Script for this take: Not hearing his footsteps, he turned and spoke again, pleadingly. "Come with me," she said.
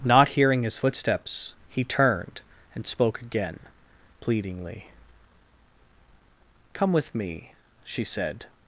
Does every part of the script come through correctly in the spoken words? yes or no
yes